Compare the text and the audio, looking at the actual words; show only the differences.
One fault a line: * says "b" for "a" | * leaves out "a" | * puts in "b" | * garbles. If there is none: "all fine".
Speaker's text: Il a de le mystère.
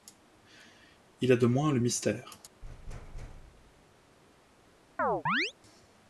* puts in "moins"